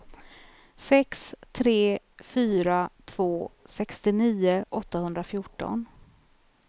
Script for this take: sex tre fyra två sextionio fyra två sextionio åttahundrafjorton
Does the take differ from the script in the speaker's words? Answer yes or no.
yes